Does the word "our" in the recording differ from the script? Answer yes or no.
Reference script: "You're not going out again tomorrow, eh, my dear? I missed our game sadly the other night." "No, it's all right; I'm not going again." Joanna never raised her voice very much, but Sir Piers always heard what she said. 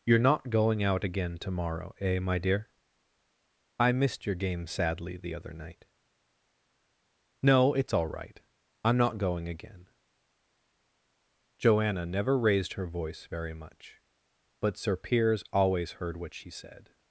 yes